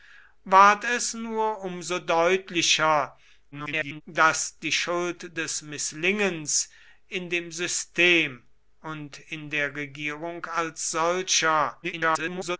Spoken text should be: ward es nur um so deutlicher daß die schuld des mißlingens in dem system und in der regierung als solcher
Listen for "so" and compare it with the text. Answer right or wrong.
right